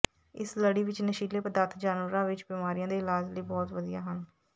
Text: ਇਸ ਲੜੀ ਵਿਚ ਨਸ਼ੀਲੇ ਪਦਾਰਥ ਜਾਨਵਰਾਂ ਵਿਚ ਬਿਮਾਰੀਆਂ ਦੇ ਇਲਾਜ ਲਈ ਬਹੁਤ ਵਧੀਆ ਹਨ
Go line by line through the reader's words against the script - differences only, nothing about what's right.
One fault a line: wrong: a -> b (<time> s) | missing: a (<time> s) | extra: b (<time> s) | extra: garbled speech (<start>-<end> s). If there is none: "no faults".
no faults